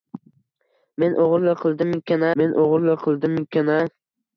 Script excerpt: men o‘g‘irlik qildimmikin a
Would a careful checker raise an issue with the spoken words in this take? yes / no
yes